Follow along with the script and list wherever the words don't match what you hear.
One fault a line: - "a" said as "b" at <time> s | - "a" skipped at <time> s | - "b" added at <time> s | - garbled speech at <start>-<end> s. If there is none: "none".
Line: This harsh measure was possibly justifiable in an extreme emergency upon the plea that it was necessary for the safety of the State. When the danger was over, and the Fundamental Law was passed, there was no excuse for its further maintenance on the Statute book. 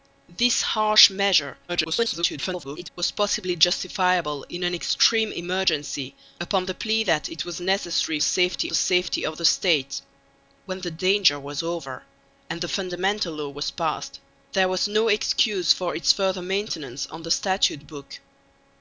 - garbled speech at 1.7-2.9 s
- "for" said as "safety" at 8.2 s